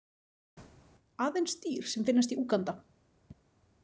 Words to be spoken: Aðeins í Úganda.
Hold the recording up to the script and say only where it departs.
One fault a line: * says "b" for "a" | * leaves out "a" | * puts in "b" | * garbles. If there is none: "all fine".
* puts in "dýr sem finnast"